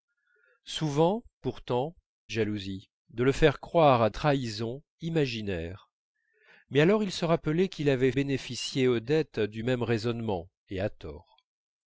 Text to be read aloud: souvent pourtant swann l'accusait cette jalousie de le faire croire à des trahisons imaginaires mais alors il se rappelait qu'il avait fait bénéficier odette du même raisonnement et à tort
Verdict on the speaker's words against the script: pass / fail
fail